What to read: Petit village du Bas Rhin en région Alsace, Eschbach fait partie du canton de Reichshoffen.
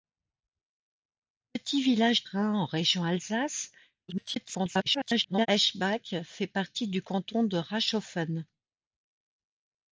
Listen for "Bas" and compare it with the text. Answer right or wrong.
wrong